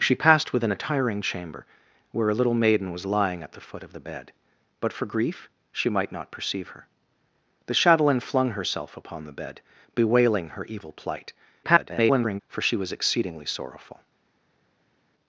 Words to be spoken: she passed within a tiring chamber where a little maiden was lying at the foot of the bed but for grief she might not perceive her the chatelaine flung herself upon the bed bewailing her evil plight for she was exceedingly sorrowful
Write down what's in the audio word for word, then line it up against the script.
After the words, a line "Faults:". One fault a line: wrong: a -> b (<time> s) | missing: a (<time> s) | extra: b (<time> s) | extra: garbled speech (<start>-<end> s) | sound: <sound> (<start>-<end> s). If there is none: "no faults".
she passed within a tiring chamber where a little maiden was lying at the foot of the bed but for grief she might not perceive her the chatelaine flung herself upon the bed bewailing her evil plight [garbled] for she was exceedingly sorrowful
Faults:
extra: garbled speech (11.6-12.4 s)